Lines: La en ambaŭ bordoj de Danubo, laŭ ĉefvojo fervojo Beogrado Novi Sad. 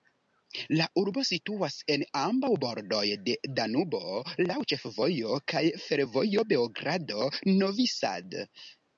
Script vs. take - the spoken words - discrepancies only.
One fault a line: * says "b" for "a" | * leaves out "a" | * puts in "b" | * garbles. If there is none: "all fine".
* puts in "urbo situas"
* puts in "kaj"